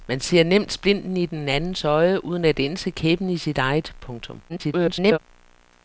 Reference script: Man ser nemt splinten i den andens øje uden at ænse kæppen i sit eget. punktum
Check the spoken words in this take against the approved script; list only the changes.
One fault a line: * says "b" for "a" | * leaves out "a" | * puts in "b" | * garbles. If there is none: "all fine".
* garbles